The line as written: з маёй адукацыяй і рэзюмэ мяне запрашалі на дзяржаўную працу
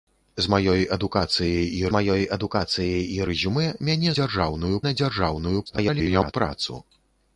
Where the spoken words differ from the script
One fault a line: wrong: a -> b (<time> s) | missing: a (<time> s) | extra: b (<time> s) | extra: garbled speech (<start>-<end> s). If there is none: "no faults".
extra: маёй адукацыяй і (1.9 s)
wrong: запрашалі -> дзяржаўную (4.2 s)
extra: garbled speech (5.7-6.3 s)